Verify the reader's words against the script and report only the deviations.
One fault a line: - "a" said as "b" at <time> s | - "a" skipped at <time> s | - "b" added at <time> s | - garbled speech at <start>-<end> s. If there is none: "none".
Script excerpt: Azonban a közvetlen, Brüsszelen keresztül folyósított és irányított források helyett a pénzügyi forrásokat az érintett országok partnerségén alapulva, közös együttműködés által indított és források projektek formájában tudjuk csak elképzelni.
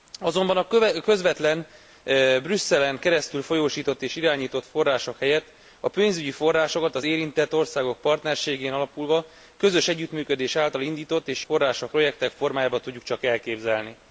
none